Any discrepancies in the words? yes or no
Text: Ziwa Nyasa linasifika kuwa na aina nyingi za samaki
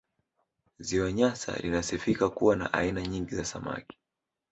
no